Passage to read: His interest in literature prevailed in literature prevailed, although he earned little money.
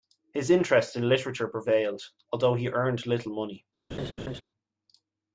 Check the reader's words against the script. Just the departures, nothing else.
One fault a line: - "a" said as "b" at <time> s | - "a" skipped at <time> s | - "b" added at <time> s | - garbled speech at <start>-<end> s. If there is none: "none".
- "in literature prevailed" skipped at 2.1 s